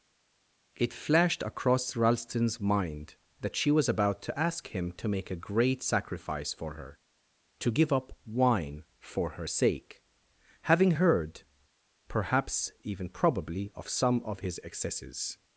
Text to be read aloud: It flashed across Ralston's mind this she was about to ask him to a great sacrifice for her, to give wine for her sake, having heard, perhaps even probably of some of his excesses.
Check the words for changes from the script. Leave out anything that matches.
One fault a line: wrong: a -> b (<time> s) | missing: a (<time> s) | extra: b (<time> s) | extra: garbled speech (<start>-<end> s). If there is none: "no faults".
wrong: this -> that (3.4 s)
extra: make (5.1 s)
extra: up (7.9 s)